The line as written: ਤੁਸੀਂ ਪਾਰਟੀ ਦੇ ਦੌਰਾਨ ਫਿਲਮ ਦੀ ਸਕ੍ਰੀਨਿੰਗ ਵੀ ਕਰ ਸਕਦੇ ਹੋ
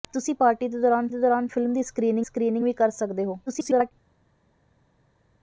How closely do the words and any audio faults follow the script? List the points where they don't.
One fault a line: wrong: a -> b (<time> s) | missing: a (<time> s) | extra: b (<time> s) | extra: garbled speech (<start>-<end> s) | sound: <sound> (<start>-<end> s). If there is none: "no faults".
extra: ਦੇ ਦੌਰਾਨ (1.1 s)
extra: ਸਕ੍ਰੀਨਿੰਗ (2.2 s)
extra: garbled speech (3.5-3.9 s)